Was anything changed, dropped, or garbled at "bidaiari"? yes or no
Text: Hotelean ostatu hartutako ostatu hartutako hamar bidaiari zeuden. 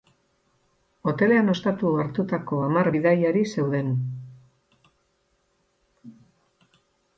no